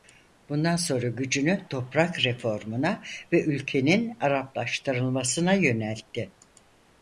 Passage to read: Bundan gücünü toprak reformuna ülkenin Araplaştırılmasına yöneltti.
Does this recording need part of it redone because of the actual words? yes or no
yes